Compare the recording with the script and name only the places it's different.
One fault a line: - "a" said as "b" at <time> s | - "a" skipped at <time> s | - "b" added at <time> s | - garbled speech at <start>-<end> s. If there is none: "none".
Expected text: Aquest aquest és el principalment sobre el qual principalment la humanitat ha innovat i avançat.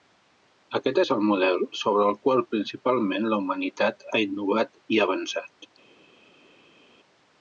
- "aquest" skipped at 1.0 s
- "principalment" said as "model" at 1.3 s